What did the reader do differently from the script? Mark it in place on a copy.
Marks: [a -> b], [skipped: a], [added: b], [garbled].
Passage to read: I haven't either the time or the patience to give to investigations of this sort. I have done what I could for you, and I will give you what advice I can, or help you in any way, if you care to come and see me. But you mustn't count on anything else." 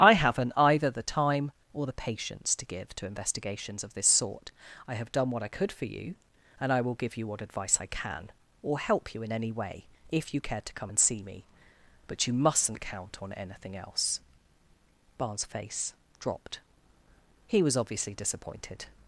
I haven't either the time or the patience to give to investigations of this sort. I have done what I could for you, and I will give you what advice I can, or help you in any way, if you care to come and see me. But you mustn't count on anything else." [added: Barnes face dropped He was obviously disappointed]